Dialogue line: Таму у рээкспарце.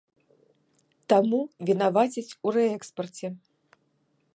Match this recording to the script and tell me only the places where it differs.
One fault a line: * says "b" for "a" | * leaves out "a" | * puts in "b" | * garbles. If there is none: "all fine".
* puts in "вінавацяць"